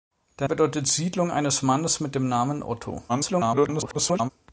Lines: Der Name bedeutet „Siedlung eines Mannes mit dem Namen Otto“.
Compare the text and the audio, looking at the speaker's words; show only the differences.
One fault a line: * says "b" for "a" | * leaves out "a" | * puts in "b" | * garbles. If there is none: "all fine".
* leaves out "Name"
* garbles